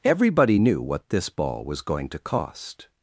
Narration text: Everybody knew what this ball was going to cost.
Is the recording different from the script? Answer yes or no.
no